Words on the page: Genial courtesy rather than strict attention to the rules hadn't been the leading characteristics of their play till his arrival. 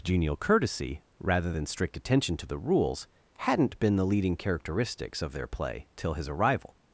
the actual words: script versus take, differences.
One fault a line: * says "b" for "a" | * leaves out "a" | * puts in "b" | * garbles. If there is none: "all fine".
all fine